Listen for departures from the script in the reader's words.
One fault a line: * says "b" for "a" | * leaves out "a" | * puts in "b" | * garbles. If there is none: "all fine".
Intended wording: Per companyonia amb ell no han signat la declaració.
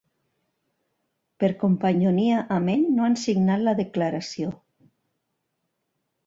all fine